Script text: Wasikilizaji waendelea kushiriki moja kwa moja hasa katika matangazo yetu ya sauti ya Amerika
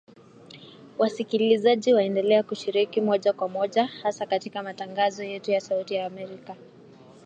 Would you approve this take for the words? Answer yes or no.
yes